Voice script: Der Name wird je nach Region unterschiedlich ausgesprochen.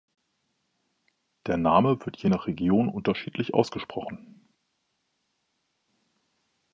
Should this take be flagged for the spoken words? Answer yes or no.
no